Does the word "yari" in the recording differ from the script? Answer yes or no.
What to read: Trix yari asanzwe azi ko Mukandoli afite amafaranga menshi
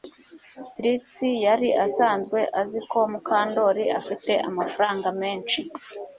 no